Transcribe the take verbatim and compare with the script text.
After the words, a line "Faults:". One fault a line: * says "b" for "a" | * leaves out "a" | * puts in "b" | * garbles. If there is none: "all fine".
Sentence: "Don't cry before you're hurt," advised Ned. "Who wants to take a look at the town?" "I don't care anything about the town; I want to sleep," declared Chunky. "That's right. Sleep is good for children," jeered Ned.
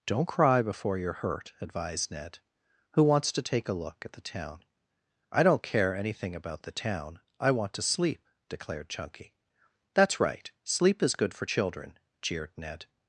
"Don't cry before you're hurt," advised Ned. "Who wants to take a look at the town?" "I don't care anything about the town; I want to sleep," declared Chunky. "That's right. Sleep is good for children," jeered Ned.
Faults:
all fine